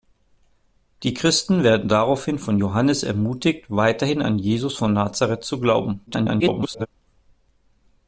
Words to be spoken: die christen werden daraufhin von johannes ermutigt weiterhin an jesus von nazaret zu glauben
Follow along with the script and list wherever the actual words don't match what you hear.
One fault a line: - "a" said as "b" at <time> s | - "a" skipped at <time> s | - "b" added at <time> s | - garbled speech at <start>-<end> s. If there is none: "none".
- garbled speech at 6.1-6.9 s